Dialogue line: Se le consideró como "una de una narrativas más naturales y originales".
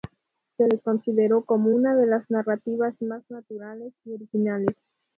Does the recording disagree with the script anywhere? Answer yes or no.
yes